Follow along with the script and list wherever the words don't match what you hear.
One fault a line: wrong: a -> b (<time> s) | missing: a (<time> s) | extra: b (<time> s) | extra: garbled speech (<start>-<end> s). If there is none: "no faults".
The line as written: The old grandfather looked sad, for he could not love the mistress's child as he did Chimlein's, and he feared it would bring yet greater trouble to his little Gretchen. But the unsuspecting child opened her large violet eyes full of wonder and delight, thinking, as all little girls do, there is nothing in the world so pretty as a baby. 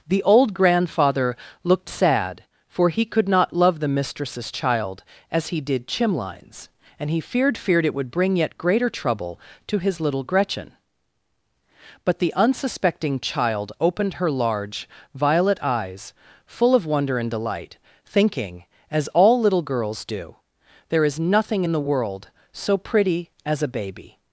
extra: feared (7.6 s)